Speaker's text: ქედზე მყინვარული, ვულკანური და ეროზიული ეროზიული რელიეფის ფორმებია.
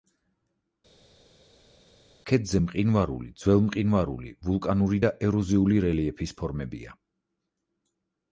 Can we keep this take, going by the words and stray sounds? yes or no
no